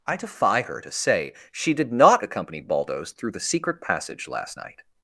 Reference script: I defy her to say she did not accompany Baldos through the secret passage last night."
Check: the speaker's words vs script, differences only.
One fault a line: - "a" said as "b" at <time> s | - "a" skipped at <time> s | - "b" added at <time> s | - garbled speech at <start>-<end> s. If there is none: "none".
none